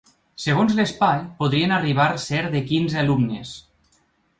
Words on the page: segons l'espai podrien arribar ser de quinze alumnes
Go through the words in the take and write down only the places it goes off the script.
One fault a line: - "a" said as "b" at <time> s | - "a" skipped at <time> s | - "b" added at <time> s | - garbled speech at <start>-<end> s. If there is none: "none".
none